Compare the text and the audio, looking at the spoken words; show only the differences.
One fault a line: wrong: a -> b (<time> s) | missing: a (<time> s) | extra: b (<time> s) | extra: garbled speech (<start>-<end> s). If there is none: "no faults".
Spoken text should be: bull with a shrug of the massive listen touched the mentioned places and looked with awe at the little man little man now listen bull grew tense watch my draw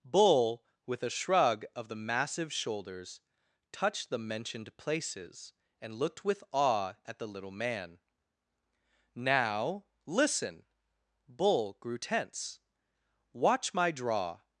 wrong: listen -> shoulders (2.5 s)
missing: little man (8.0 s)